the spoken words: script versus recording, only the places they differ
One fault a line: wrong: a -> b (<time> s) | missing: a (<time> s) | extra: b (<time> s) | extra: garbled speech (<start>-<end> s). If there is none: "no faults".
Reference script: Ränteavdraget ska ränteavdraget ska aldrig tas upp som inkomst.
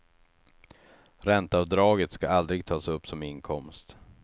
missing: ränteavdraget ska (2.3 s)